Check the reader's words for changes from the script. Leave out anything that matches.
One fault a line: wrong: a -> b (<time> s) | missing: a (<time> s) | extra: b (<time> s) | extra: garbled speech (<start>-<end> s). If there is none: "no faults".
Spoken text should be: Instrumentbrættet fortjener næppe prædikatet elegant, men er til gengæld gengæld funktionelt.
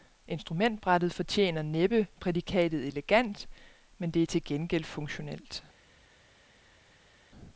extra: det (4.1 s)
missing: gengæld (4.8 s)